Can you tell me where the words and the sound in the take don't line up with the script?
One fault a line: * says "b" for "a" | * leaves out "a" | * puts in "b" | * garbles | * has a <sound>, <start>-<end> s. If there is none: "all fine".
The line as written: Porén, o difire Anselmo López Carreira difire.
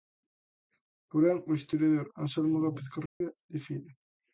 * says "historiador" for "difire"
* has a dropout, 3.1-3.2 s